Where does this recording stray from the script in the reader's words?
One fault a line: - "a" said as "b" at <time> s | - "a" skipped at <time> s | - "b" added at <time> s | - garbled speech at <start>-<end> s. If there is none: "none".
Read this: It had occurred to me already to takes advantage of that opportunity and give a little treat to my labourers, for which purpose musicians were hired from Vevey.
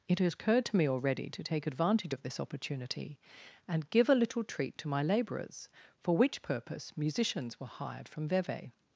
- "takes" said as "take" at 1.4 s
- "that" said as "this" at 2.2 s